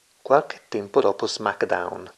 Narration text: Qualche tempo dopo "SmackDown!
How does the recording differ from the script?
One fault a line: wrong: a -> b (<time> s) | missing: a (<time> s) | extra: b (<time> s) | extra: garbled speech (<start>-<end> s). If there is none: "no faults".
no faults